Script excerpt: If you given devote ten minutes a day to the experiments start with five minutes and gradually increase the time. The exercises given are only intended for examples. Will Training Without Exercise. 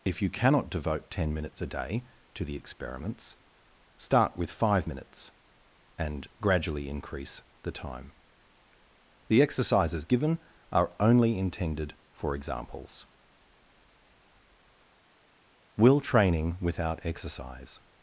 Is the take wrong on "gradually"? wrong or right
right